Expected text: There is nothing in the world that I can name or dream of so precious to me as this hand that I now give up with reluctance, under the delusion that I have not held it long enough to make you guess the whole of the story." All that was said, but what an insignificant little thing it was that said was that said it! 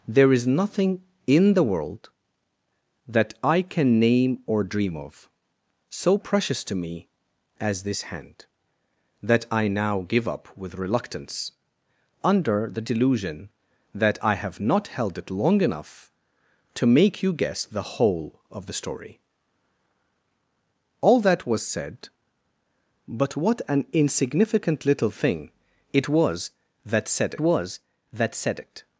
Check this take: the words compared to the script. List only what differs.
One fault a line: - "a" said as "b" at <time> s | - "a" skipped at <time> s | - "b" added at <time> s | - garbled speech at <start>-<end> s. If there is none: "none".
none